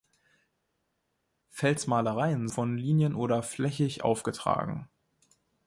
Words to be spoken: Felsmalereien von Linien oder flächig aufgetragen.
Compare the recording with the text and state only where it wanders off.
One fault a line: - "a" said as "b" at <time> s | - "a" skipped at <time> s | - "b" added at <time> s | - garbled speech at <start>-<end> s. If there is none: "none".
none